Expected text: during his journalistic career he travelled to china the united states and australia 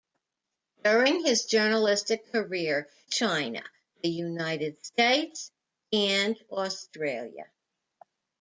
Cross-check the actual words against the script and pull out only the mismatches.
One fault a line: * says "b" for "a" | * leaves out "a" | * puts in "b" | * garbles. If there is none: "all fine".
* leaves out "he travelled to"